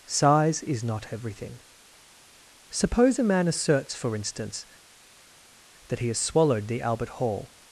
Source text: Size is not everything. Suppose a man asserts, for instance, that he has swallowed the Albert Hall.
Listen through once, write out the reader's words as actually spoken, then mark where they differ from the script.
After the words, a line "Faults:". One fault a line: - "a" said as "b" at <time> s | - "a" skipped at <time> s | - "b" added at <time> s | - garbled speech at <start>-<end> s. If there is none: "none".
Size is not everything. Suppose a man asserts, for instance, that he has swallowed the Albert Hall.
Faults:
none